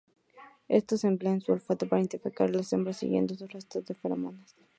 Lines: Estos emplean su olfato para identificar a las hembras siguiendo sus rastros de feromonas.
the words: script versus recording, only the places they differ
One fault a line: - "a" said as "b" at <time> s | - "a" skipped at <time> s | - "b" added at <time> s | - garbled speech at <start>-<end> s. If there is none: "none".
none